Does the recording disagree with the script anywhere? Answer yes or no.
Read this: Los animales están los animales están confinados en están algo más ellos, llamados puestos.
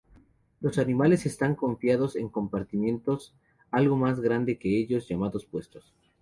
yes